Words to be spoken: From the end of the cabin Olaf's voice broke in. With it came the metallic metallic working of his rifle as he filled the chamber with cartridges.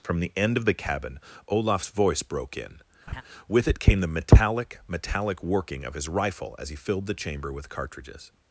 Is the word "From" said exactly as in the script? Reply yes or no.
yes